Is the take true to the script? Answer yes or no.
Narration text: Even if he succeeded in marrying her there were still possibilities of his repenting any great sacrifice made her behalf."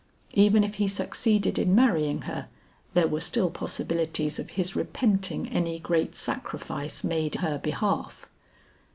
yes